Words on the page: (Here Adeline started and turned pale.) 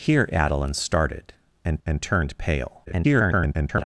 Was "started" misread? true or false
false